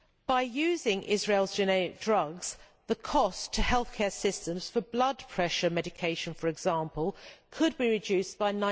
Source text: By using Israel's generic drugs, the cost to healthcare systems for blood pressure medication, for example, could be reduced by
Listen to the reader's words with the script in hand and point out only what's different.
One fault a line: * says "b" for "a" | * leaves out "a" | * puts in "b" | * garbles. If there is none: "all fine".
all fine